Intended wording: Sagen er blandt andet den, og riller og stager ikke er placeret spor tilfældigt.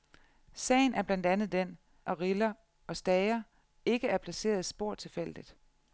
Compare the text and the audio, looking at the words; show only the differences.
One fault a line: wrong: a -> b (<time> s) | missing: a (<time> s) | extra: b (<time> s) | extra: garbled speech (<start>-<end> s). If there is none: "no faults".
no faults